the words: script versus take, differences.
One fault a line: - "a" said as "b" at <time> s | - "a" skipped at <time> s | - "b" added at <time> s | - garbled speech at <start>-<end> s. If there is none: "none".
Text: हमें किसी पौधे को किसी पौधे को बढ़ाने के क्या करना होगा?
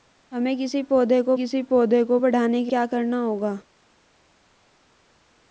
none